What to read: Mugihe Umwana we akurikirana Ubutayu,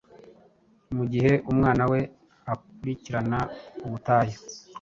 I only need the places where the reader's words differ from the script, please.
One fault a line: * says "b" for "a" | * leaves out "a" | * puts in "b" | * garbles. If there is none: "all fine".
all fine